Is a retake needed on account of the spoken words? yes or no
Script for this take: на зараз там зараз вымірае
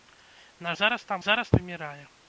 no